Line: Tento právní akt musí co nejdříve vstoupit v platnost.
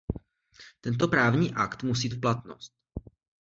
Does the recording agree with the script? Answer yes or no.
no